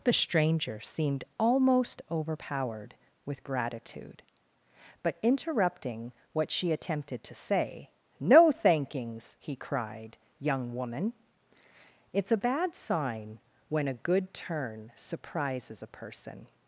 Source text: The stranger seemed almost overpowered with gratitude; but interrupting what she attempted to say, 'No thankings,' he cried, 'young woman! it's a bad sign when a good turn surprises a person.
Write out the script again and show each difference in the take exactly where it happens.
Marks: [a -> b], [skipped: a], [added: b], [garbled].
The stranger seemed almost overpowered with gratitude; but interrupting what she attempted to say, 'No thankings,' he cried, 'young woman! it's a bad sign when a good turn surprises a person.